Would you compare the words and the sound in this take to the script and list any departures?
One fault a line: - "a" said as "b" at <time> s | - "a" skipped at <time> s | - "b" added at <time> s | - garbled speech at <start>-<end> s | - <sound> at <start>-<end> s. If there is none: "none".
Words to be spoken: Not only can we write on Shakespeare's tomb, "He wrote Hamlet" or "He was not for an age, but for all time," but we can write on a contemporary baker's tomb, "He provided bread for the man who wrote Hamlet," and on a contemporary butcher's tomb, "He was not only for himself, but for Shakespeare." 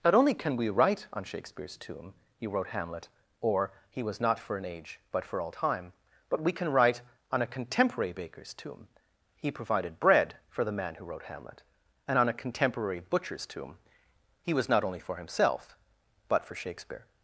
none